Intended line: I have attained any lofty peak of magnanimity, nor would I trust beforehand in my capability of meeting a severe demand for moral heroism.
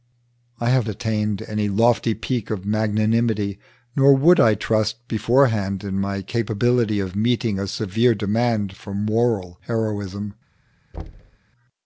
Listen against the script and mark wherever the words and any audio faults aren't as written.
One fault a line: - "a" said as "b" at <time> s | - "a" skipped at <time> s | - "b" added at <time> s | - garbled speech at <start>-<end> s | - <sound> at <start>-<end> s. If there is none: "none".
- thud at 10.9-11.4 s